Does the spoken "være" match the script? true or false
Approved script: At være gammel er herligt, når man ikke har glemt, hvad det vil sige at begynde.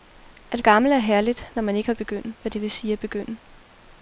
false